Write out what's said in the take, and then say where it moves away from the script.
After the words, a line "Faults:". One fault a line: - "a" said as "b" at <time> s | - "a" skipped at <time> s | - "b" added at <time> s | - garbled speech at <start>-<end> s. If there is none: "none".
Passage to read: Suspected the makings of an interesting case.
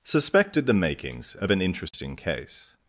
Suspected the makings of an interesting case.
Faults:
none